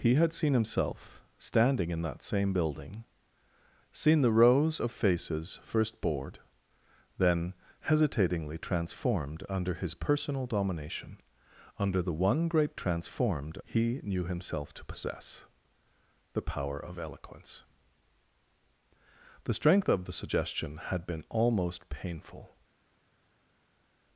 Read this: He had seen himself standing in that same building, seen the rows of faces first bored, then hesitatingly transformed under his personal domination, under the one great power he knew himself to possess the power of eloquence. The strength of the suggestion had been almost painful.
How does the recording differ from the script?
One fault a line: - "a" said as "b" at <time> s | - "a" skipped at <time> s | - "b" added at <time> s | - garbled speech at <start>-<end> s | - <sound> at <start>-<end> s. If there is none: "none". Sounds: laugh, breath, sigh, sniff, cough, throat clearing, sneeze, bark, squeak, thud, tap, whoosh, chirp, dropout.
- "power" said as "transformed" at 12.7 s